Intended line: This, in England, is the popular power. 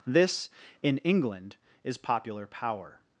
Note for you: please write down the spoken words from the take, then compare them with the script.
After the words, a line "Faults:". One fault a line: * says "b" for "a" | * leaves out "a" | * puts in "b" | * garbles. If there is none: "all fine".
This, in England, is popular power.
Faults:
* leaves out "the"